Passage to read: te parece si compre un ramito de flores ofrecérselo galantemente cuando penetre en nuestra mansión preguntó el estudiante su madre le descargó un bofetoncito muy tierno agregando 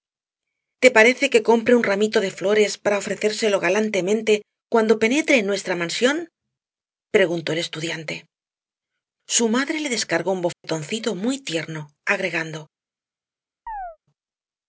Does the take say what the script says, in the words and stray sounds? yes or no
no